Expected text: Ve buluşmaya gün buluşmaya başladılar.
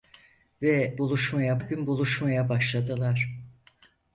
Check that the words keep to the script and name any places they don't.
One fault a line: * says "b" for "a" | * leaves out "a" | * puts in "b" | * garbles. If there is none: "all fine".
all fine